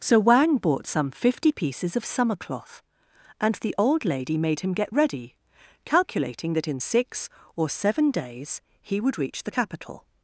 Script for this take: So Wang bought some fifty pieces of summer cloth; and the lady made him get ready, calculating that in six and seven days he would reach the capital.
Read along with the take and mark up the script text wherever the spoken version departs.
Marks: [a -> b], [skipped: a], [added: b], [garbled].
So Wang bought some fifty pieces of summer cloth; and the [added: old] lady made him get ready, calculating that in six [and -> or] seven days he would reach the capital.